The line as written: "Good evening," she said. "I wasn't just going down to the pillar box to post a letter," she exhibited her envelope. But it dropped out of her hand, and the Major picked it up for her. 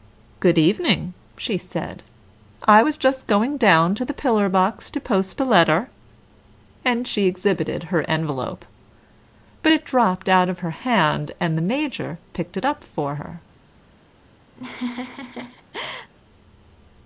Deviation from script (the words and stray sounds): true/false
true